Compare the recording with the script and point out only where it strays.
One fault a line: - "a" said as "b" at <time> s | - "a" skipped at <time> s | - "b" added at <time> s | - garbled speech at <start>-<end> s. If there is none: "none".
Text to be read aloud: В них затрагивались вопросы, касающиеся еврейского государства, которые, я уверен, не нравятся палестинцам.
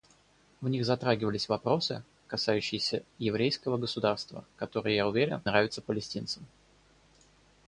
- "не" skipped at 5.4 s